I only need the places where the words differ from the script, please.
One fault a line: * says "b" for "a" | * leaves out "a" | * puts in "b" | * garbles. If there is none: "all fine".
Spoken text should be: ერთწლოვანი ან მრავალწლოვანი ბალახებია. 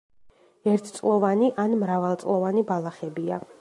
all fine